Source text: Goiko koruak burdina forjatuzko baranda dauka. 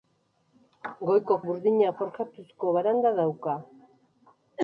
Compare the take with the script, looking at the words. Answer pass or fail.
fail